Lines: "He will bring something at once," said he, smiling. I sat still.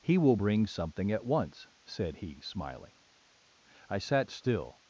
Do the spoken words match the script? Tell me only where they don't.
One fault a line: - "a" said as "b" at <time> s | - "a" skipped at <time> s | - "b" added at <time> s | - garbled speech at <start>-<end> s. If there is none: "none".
none